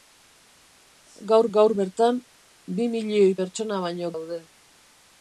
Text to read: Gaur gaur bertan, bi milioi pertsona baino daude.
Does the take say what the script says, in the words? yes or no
yes